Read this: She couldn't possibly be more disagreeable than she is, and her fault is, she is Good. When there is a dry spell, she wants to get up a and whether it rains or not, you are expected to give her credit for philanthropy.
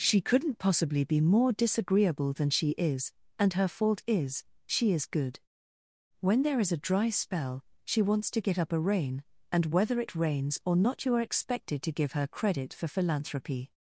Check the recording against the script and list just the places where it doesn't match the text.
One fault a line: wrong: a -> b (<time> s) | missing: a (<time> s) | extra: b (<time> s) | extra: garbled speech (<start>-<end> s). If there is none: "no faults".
extra: rain (8.8 s)